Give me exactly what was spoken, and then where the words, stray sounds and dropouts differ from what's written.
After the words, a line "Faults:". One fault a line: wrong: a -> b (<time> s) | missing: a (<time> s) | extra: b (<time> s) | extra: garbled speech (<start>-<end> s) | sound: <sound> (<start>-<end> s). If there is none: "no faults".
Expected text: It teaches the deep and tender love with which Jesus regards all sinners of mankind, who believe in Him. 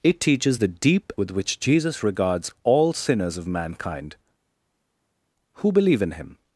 It teaches the deep with which Jesus regards all sinners of mankind, who believe in Him.
Faults:
missing: and tender love (1.1 s)